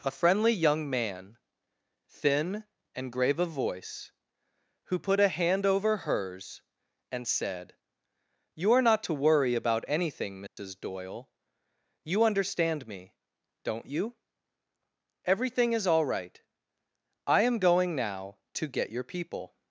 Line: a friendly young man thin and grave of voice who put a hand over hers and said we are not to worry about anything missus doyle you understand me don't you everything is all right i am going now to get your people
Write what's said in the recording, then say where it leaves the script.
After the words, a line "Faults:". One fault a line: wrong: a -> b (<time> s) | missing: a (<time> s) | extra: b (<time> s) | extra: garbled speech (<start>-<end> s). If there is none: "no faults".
a friendly young man thin and grave of voice who put a hand over hers and said you are not to worry about anything missus doyle you understand me don't you everything is all right i am going now to get your people
Faults:
wrong: we -> you (8.6 s)